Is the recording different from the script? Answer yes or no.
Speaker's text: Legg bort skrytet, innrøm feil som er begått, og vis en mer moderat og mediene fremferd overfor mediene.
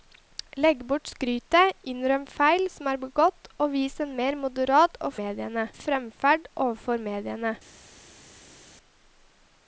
no